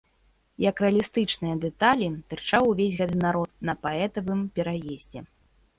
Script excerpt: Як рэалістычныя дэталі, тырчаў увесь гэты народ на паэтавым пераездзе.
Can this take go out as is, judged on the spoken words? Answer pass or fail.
pass